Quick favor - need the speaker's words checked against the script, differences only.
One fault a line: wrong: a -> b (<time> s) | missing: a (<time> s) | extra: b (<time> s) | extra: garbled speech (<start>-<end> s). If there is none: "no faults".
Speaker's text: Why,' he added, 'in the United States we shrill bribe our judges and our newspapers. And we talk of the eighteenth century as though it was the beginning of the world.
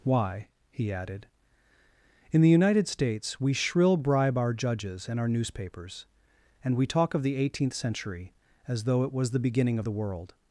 no faults